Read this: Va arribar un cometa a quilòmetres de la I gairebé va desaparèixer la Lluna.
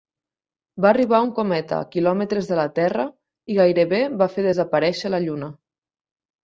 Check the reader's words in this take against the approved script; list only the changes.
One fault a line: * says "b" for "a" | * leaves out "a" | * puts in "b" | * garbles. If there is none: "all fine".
* puts in "Terra"
* puts in "fer"